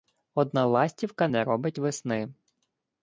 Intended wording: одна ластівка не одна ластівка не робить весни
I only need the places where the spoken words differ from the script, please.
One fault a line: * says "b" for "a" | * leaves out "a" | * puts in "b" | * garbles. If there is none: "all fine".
* leaves out "одна ластівка не"